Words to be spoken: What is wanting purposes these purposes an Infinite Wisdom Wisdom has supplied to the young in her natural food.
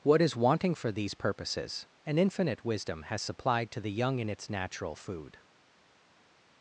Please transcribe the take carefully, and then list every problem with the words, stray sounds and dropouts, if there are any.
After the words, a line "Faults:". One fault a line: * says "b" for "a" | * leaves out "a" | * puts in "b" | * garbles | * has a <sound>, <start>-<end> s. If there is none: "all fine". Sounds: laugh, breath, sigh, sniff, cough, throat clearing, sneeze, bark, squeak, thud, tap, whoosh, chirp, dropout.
What is wanting for these purposes an Infinite Wisdom has supplied to the young in its natural food.
Faults:
* says "for" for "purposes"
* leaves out "Wisdom"
* says "its" for "her"